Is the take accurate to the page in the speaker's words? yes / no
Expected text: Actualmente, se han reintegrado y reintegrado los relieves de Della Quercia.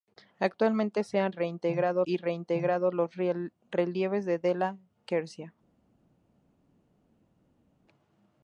yes